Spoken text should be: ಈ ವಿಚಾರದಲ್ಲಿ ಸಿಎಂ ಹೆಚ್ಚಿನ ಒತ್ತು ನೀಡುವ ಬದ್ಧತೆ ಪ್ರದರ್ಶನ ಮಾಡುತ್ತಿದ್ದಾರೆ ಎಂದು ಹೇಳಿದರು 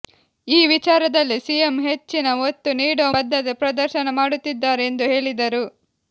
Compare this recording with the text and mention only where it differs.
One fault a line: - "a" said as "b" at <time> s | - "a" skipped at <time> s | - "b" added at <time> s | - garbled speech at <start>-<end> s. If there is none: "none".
none